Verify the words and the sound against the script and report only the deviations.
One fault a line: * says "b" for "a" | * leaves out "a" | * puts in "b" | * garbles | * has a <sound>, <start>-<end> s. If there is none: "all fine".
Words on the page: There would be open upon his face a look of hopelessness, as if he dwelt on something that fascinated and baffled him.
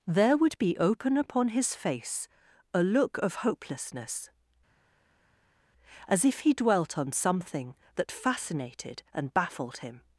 all fine